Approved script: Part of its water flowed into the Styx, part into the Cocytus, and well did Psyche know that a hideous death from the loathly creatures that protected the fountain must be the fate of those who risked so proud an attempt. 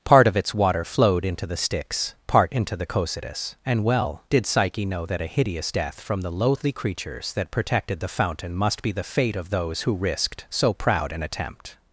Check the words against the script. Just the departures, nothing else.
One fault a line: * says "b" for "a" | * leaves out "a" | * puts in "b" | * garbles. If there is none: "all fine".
all fine